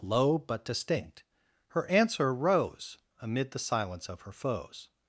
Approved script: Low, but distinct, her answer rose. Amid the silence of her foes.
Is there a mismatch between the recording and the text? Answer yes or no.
no